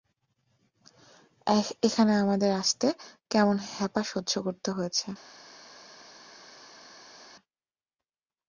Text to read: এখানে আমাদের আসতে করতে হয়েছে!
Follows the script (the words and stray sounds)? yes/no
no